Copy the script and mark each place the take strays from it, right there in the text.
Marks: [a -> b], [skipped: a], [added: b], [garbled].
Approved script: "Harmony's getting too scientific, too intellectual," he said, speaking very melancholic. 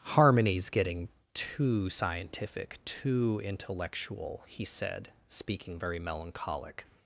"Harmony's getting too scientific, too intellectual," he said, speaking very melancholic.